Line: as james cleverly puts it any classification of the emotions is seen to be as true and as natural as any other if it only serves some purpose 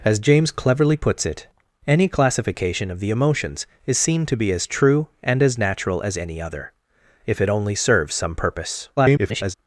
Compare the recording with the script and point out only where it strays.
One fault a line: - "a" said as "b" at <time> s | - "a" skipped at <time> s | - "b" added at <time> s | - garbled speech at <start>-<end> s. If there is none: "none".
- garbled speech at 9.0-9.5 s